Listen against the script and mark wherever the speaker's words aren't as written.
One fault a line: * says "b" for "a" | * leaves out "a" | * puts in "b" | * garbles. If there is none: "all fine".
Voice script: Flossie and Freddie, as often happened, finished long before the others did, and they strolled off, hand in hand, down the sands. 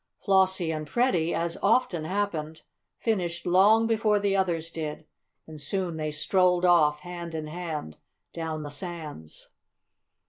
* puts in "soon"